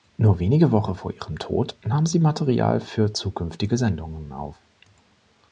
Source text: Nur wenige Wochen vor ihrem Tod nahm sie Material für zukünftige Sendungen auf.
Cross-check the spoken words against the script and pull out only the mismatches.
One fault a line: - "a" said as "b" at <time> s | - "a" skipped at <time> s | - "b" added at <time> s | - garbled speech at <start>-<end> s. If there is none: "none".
none